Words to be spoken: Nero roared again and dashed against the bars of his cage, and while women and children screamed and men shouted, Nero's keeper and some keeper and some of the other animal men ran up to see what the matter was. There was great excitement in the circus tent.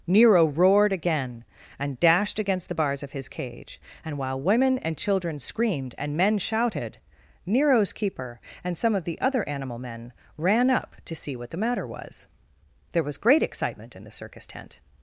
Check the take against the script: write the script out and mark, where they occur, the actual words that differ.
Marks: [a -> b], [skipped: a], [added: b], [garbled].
Nero roared again and dashed against the bars of his cage, and while women and children screamed and men shouted, Nero's keeper and some [skipped: keeper and some] of the other animal men ran up to see what the matter was. There was great excitement in the circus tent.